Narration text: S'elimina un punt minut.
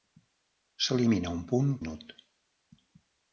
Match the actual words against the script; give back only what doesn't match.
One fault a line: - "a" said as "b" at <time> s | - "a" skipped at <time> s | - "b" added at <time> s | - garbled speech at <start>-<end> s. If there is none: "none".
none